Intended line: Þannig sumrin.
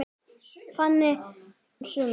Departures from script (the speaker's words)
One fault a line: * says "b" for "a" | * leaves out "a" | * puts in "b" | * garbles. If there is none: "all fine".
all fine